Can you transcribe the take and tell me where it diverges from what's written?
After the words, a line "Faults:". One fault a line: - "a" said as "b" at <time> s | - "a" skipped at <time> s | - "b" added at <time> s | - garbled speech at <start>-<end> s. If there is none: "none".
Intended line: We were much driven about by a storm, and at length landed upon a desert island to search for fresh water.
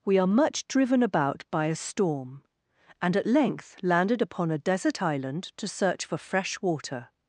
We are much driven about by a storm, and at length landed upon a desert island to search for fresh water.
Faults:
- "were" said as "are" at 0.2 s